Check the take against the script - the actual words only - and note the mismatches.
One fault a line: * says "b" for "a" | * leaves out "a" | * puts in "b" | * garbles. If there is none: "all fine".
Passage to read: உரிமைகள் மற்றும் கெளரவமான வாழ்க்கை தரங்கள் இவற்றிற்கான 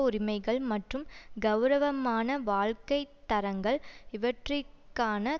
all fine